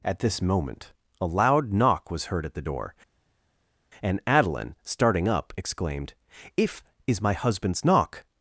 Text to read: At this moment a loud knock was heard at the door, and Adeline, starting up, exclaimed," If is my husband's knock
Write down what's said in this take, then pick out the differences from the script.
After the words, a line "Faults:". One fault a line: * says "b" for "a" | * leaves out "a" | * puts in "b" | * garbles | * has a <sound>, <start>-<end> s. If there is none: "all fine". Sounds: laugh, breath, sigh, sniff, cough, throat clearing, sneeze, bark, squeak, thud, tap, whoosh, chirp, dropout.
At this moment a loud knock was heard at the door, and Adeline, starting up, exclaimed," If is my husband's knock
Faults:
all fine